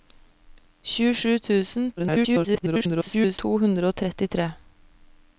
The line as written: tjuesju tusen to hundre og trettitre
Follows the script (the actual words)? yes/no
no